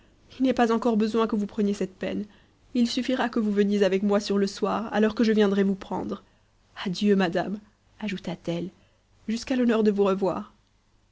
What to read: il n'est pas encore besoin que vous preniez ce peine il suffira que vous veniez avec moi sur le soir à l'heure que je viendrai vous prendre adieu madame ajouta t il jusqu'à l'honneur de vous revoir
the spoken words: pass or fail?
fail